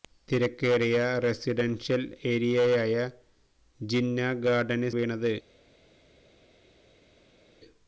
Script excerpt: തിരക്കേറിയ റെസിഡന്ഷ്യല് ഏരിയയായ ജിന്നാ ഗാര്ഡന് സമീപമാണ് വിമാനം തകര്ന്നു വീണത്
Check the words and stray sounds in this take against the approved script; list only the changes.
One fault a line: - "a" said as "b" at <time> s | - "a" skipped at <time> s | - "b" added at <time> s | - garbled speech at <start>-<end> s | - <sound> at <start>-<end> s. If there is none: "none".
- "സമീപമാണ് വിമാനം തകര്ന്നു" skipped at 4.9 s